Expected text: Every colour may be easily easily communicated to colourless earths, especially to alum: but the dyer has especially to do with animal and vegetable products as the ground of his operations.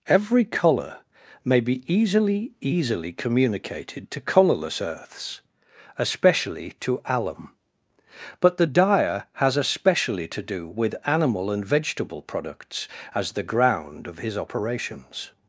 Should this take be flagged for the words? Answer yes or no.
no